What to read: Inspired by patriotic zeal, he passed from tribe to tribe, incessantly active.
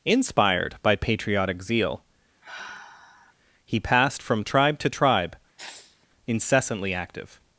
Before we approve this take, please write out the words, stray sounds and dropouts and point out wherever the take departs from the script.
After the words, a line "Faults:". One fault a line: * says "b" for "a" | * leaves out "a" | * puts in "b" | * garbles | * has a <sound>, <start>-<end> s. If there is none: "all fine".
Inspired by patriotic zeal, he passed from tribe to tribe, incessantly active.
Faults:
* has a sigh, 2.4-3.4 s
* has a sneeze, 5.6-6.1 s